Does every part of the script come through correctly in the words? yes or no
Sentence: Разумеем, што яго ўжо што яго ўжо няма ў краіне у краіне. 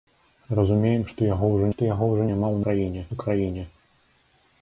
yes